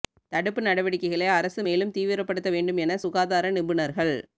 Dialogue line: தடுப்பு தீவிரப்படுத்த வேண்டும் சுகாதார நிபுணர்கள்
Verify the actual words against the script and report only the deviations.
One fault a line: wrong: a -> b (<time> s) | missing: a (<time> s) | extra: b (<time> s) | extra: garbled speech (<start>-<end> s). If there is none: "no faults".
extra: நடவடிக்கைகளை அரசு மேலும் (0.6 s)
extra: என (2.8 s)